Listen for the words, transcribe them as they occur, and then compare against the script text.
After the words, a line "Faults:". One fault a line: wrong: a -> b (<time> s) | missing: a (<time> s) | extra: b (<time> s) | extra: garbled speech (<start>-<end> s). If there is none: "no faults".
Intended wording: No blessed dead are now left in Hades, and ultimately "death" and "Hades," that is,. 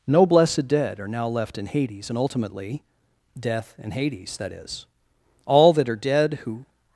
No blessed dead are now left in Hades, and ultimately "death" and "Hades," that is, all that are dead who
Faults:
extra: all that are dead who (5.5 s)